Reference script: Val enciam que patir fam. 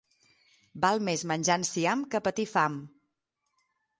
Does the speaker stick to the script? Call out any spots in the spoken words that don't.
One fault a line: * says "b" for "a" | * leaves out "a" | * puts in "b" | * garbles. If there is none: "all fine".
* puts in "més menjar"